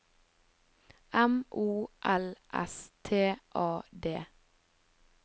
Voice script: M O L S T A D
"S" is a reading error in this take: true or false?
false